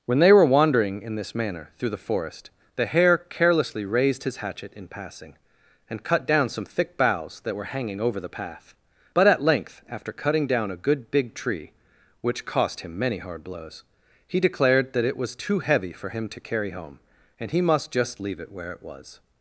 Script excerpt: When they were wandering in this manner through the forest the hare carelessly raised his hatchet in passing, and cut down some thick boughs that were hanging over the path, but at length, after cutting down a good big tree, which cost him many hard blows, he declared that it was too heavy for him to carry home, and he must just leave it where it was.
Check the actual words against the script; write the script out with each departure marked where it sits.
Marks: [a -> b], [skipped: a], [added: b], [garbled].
When they were wandering in this manner through the forest the hare carelessly raised his hatchet in passing, and cut down some thick boughs that were hanging over the path, but at length, after cutting down a good big tree, which cost him many hard blows, he declared that it was too heavy for him to carry home, and he must just leave it where it was.